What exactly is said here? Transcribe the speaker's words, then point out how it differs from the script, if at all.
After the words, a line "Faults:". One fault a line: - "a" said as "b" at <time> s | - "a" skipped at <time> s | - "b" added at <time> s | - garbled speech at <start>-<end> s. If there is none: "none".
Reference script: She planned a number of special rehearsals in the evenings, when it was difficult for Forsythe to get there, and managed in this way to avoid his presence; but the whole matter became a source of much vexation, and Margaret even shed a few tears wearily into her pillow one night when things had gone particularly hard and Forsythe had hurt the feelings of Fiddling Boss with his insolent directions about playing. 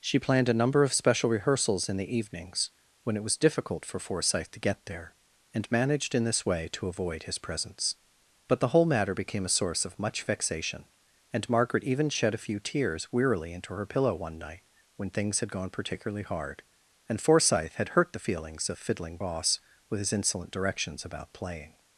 She planned a number of special rehearsals in the evenings, when it was difficult for Forsythe to get there, and managed in this way to avoid his presence; but the whole matter became a source of much vexation, and Margaret even shed a few tears wearily into her pillow one night when things had gone particularly hard and Forsythe had hurt the feelings of Fiddling Boss with his insolent directions about playing.
Faults:
none